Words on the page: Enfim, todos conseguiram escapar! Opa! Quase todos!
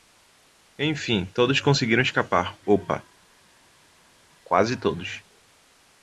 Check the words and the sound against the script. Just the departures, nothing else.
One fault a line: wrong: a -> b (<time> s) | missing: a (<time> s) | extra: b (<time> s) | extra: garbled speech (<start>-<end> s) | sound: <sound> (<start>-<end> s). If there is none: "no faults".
no faults